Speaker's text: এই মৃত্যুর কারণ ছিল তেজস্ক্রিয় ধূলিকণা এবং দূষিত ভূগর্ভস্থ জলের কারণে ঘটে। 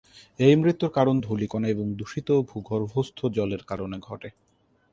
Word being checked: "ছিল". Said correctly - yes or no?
no